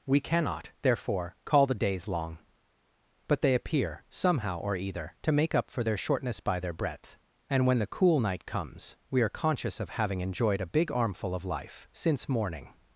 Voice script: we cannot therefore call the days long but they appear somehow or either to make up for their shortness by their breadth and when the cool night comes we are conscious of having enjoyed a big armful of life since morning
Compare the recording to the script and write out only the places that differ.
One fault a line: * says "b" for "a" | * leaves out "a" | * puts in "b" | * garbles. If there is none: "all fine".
all fine